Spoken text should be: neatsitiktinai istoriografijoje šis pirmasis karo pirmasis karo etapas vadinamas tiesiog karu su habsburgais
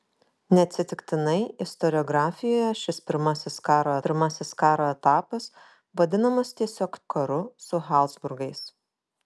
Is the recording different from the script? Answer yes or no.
no